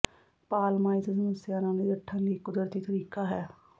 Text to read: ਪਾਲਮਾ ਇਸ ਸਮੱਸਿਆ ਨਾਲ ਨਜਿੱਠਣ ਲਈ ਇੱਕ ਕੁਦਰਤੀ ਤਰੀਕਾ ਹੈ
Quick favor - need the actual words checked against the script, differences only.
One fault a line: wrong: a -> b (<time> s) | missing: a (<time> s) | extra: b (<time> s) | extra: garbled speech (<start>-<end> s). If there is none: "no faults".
no faults